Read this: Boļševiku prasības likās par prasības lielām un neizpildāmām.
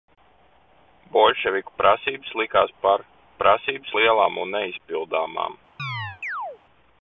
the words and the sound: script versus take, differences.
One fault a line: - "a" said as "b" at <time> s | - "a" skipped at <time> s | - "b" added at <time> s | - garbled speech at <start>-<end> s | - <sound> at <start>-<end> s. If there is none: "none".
- chirp at 5.8-6.6 s